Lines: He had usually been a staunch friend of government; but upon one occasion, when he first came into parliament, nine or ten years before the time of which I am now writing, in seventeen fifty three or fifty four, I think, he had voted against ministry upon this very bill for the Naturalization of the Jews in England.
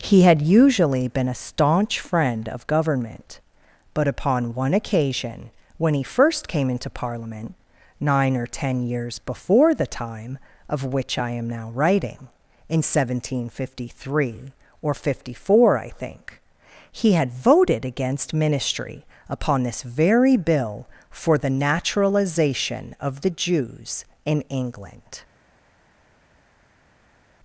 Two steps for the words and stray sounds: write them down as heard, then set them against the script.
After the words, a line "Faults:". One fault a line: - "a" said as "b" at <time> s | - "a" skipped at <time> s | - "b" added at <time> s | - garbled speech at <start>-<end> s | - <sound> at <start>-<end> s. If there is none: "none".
He had usually been a staunch friend of government; but upon one occasion, when he first came into parliament, nine or ten years before the time of which I am now writing, in seventeen fifty three or fifty four, I think, he had voted against ministry upon this very bill for the Naturalization of the Jews in England.
Faults:
none